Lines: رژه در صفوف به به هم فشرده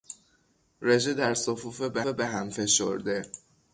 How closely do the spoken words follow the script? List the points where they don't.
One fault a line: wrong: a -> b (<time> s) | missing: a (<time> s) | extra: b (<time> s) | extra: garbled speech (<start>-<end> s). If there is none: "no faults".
no faults